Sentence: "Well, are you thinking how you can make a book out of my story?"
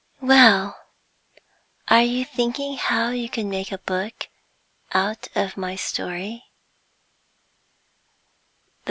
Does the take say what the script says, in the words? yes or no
yes